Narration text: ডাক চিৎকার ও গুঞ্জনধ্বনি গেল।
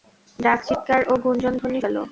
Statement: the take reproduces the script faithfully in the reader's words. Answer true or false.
true